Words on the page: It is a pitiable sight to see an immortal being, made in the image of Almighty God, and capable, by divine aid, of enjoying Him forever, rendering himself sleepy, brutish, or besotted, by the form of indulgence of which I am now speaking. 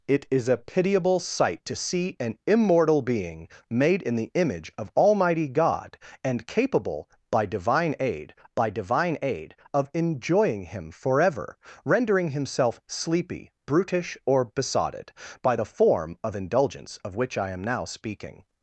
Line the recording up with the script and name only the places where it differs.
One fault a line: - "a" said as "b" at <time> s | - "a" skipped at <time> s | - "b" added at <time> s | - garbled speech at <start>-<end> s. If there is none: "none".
- "by divine aid" added at 8.5 s